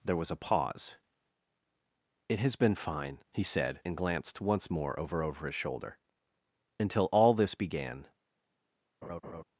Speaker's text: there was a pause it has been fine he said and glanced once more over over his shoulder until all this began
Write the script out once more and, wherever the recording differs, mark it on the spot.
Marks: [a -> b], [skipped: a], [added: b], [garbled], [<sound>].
there was a pause it has been fine he said and glanced once more over over his shoulder until all this began [laugh]